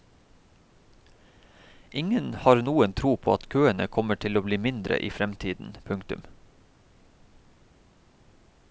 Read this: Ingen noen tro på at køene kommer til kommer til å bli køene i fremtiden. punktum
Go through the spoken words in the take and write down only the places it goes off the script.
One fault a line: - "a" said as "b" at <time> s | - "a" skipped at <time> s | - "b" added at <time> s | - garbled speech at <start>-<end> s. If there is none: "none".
- "har" added at 2.3 s
- "kommer til" skipped at 4.4 s
- "køene" said as "mindre" at 4.7 s